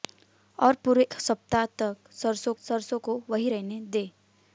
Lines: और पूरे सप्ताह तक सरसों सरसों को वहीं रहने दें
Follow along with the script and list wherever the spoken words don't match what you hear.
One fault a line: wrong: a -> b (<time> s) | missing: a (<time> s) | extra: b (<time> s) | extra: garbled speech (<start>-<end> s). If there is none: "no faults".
no faults